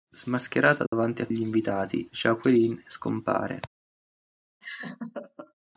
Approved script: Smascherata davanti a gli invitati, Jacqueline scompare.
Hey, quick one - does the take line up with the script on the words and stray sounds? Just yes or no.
no